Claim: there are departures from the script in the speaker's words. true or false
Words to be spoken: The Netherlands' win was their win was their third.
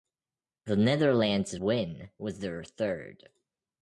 true